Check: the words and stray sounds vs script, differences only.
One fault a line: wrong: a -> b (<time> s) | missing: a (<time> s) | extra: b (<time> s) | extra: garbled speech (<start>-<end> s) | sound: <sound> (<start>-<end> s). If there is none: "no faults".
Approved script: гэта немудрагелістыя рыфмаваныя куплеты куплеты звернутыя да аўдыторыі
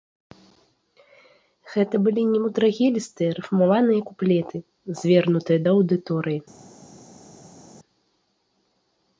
extra: былі (2.1 s)
missing: куплеты (4.6 s)